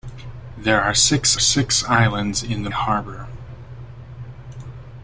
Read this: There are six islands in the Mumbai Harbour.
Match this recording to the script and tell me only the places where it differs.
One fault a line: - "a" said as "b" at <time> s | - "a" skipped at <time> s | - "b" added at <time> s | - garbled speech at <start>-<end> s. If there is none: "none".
- "six" added at 1.4 s
- "Mumbai" skipped at 2.7 s